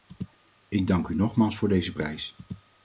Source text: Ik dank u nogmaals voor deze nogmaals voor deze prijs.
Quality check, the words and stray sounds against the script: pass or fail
fail